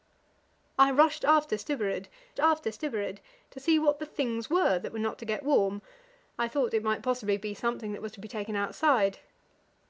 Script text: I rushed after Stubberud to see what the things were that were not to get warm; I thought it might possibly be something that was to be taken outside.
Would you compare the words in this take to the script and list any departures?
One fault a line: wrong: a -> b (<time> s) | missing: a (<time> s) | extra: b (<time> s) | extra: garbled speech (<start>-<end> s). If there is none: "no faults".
extra: after Stubberud (2.4 s)